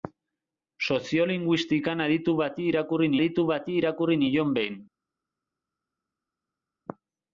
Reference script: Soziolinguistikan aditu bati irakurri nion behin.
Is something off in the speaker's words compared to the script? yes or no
yes